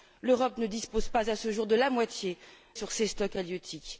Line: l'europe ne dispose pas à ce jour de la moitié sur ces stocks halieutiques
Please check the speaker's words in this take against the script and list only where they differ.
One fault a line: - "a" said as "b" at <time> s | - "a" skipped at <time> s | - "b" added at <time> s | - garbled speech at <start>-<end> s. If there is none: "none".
none